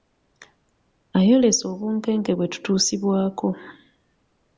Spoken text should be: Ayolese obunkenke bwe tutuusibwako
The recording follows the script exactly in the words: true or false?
true